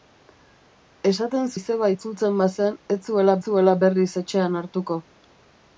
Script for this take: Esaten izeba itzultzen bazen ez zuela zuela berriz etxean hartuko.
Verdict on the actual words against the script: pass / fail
pass